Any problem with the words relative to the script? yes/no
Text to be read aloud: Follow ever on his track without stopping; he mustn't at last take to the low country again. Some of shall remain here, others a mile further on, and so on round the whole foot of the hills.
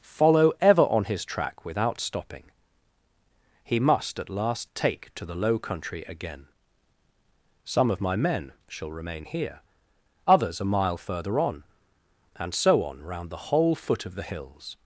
yes